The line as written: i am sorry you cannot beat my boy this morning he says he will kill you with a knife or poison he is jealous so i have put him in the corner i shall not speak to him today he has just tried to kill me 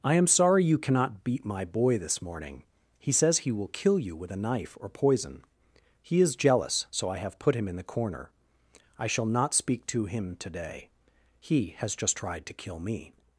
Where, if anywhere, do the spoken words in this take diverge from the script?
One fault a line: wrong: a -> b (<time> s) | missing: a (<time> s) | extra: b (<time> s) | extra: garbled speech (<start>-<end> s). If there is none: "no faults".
no faults